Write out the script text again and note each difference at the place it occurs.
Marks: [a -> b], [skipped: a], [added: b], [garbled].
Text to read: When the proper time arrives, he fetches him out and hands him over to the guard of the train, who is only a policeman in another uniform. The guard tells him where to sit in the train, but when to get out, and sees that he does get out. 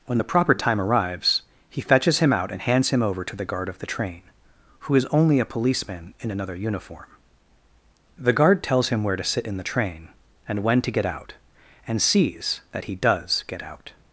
When the proper time arrives, he fetches him out and hands him over to the guard of the train, who is only a policeman in another uniform. The guard tells him where to sit in the train, [but -> and] when to get out, and sees that he does get out.